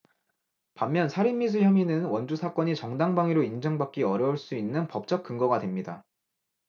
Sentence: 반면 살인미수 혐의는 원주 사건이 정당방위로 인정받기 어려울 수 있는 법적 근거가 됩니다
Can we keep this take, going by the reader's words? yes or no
yes